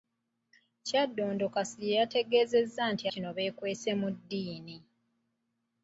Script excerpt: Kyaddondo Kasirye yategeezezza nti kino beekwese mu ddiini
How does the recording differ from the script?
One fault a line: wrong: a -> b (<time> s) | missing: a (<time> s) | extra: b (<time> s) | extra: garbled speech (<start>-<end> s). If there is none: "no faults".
no faults